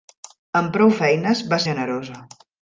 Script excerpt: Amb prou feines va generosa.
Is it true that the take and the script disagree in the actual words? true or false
false